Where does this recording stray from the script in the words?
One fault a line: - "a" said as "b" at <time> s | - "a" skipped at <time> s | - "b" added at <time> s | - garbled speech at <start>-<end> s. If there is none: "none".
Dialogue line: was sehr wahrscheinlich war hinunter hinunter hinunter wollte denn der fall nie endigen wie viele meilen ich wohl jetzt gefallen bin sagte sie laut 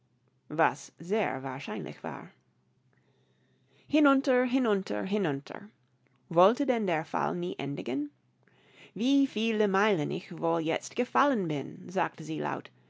none